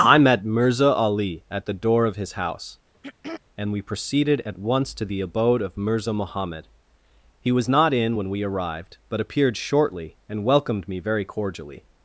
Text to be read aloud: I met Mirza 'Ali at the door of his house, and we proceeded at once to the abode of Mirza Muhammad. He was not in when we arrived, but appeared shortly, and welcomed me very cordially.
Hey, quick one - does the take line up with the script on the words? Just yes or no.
yes